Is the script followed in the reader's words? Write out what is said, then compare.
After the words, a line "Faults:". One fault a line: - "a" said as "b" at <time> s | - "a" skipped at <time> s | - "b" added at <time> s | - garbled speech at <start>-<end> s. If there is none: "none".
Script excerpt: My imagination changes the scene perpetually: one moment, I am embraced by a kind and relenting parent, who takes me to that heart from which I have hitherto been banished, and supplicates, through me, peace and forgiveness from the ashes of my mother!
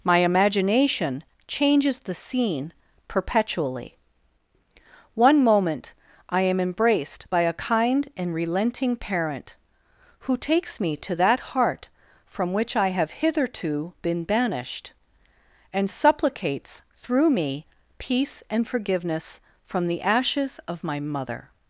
My imagination changes the scene perpetually: one moment, I am embraced by a kind and relenting parent, who takes me to that heart from which I have hitherto been banished, and supplicates, through me, peace and forgiveness from the ashes of my mother!
Faults:
none